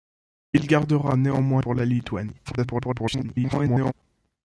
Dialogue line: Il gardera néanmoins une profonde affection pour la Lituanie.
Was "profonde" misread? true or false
true